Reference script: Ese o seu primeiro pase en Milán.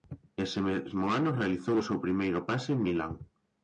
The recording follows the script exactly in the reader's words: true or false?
false